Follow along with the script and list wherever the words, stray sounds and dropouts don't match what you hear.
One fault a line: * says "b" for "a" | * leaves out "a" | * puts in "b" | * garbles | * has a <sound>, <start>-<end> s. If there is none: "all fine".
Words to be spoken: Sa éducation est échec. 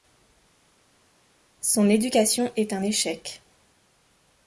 * says "Son" for "Sa"
* puts in "un"